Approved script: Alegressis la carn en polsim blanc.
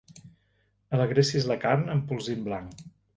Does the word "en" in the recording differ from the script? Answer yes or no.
yes